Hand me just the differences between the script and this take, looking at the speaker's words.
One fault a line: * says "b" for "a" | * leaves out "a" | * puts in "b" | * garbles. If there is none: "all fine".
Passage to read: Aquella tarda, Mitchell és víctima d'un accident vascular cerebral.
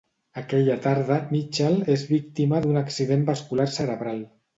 all fine